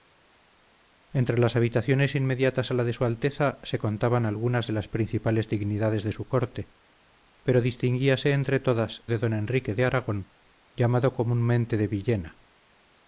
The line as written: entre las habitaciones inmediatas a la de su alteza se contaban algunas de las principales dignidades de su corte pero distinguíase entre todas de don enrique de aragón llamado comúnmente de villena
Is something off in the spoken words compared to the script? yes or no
no